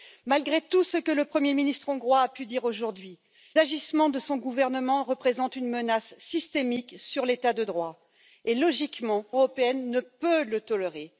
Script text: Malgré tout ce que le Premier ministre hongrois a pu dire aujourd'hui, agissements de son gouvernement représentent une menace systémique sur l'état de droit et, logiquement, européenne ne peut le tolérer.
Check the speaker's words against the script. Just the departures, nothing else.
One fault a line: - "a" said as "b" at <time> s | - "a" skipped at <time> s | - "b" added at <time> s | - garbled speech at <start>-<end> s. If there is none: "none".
none